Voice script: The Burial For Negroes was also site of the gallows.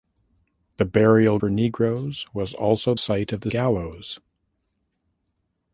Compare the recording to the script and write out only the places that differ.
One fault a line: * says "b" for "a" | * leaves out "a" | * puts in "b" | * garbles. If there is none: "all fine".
all fine